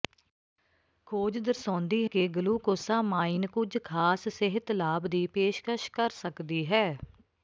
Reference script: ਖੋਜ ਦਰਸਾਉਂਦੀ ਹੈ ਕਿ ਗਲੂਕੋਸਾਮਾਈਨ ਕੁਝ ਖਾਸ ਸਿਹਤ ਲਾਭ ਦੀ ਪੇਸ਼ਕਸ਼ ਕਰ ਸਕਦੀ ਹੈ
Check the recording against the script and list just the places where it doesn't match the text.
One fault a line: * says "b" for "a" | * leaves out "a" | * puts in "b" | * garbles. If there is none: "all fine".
* leaves out "ਹੈ"